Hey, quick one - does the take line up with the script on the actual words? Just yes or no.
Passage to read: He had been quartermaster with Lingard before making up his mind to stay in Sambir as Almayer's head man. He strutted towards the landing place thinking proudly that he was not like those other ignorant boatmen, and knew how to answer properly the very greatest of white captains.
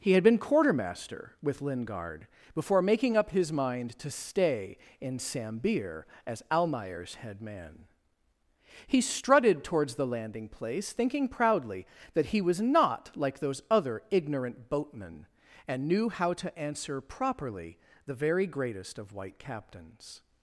yes